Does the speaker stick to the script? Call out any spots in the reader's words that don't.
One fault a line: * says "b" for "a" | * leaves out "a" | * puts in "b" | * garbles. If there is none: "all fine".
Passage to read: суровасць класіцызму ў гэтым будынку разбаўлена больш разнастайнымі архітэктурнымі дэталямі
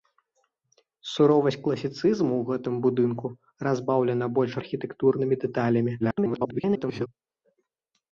* leaves out "разнастайнымі"
* garbles